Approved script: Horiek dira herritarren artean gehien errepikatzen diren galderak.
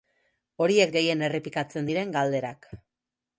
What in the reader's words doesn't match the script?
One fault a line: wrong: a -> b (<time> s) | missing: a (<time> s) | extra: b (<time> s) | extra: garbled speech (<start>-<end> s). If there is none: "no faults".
missing: dira herritarren artean (0.9 s)